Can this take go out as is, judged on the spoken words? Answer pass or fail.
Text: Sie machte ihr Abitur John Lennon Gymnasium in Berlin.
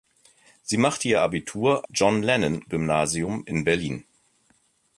pass